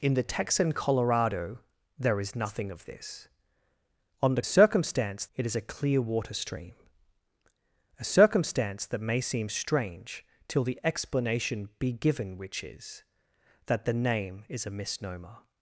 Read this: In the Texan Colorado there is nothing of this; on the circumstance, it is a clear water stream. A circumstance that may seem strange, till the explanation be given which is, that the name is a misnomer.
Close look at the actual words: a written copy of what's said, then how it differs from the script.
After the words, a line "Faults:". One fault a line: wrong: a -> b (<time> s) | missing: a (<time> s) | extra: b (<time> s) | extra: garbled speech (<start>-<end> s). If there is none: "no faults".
In the Texan Colorado there is nothing of this; on the circumstance, it is a clear water stream. A circumstance that may seem strange, till the explanation be given which is, that the name is a misnomer.
Faults:
no faults